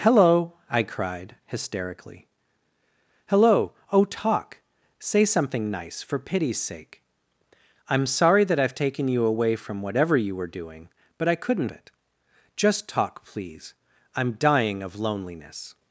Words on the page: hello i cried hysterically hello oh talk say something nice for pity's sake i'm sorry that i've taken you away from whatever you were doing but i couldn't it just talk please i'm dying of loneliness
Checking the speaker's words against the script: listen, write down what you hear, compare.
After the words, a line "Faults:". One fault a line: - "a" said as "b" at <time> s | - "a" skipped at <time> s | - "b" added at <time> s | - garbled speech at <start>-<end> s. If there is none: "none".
hello i cried hysterically hello oh talk say something nice for pity's sake i'm sorry that i've taken you away from whatever you were doing but i couldn't it just talk please i'm dying of loneliness
Faults:
none